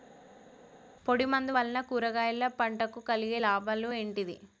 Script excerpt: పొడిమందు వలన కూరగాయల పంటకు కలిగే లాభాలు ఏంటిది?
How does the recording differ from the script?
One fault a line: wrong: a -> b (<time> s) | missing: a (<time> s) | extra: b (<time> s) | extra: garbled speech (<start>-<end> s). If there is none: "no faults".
no faults